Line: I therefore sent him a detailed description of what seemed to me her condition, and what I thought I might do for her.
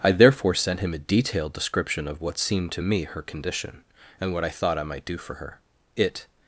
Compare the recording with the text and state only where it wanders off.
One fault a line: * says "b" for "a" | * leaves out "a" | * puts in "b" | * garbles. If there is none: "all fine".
* puts in "It"